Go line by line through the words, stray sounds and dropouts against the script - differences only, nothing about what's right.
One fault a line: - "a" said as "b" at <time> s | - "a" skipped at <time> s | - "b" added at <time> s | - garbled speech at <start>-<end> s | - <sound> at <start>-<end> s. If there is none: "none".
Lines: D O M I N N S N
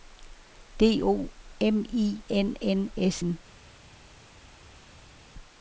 none